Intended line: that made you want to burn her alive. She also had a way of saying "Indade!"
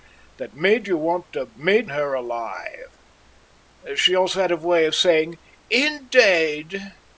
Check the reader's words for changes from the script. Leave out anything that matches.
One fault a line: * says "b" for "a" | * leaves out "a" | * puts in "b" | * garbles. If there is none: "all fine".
* says "made" for "burn"